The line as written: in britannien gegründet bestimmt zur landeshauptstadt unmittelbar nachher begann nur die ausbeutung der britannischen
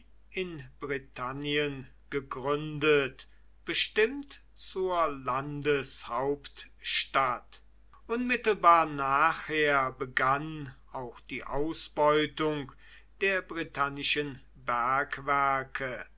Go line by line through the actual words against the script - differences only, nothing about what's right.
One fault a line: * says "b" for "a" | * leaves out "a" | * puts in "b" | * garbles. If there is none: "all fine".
* says "auch" for "nur"